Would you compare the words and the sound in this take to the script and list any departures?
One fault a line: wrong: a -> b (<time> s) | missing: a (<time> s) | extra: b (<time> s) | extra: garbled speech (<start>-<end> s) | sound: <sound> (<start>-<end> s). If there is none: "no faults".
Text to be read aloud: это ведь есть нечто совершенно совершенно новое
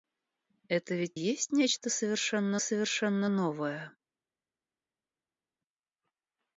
no faults